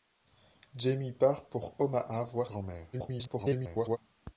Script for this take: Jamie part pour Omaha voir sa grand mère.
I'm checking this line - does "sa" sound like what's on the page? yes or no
no